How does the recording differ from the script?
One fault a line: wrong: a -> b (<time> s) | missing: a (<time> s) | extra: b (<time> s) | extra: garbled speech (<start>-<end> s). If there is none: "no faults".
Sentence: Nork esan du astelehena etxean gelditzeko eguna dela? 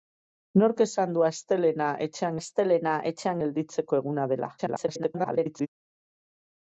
extra: astelehena etxean (2.4 s)
extra: garbled speech (4.6-5.7 s)